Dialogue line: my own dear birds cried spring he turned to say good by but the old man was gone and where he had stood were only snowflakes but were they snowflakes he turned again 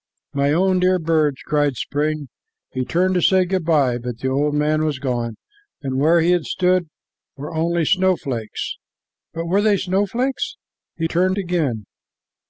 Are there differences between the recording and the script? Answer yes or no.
no